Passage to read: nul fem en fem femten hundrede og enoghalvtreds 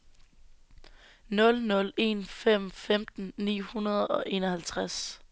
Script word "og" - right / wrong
right